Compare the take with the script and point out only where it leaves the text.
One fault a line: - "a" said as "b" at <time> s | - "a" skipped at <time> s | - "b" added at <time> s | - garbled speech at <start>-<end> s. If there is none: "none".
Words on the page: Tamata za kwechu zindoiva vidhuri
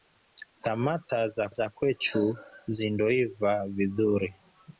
- "za" added at 1.5 s